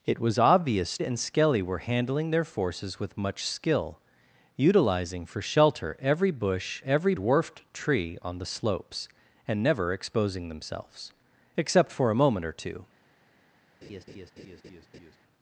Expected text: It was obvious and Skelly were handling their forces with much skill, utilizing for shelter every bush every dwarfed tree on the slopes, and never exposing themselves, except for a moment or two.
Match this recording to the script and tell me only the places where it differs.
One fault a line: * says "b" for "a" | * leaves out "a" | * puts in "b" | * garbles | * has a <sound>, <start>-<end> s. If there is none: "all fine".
* has a laugh, 13.8-15.2 s